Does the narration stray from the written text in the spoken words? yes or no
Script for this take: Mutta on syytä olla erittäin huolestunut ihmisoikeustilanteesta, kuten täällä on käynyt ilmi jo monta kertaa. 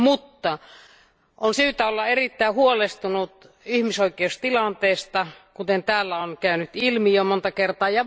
no